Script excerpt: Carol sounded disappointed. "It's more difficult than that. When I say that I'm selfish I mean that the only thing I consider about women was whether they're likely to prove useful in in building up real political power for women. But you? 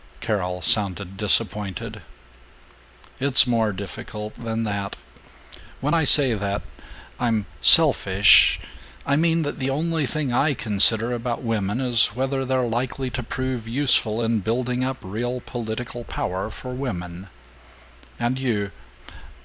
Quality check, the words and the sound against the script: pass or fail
fail